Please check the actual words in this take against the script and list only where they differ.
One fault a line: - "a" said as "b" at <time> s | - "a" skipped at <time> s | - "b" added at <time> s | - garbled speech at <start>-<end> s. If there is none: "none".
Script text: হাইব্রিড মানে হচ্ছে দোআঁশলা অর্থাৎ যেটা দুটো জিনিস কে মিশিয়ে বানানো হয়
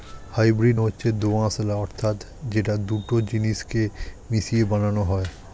- "মানে" skipped at 0.8 s